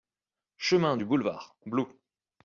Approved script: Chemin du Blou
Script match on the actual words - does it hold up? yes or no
no